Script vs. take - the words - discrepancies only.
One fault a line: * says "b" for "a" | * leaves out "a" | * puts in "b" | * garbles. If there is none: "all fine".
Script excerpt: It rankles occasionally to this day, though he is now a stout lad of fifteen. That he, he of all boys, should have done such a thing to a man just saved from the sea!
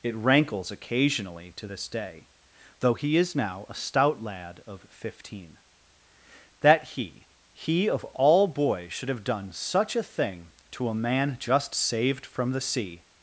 all fine